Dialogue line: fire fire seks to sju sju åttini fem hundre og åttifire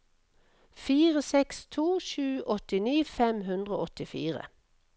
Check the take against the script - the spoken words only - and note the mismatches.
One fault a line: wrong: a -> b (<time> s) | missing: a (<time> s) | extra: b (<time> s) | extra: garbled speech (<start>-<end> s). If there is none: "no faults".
missing: fire (1.2 s)
missing: sju (2.2 s)